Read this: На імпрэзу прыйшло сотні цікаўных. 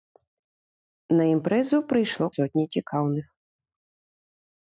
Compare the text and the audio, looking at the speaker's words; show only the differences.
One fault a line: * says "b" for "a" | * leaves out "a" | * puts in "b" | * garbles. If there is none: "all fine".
all fine